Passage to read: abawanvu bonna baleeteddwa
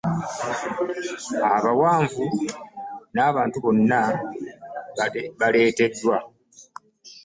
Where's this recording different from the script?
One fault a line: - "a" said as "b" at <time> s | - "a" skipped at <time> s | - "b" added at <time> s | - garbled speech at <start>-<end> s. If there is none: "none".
- "n'abantu" added at 3.1 s